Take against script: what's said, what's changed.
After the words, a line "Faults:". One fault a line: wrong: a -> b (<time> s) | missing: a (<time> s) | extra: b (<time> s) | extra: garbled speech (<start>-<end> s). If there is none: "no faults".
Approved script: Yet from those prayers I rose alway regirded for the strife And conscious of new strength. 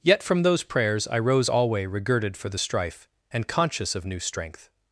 Yet from those prayers I rose alway regirded for the strife And conscious of new strength.
Faults:
no faults